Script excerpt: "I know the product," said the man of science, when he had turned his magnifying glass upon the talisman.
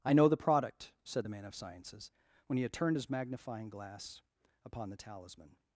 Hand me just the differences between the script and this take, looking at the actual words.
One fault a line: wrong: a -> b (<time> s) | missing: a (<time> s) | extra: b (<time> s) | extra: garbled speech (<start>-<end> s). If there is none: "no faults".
wrong: science -> sciences (1.5 s)